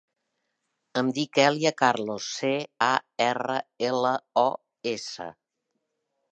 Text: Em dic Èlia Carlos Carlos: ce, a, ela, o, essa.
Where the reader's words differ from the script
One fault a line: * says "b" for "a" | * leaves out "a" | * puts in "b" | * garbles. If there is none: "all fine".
* leaves out "Carlos"
* puts in "erra"